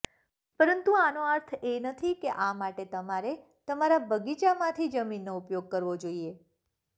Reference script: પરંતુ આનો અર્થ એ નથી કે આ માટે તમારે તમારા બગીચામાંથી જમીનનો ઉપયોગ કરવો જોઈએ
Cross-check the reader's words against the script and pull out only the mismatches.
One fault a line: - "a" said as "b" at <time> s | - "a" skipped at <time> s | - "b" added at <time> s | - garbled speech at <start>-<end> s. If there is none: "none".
none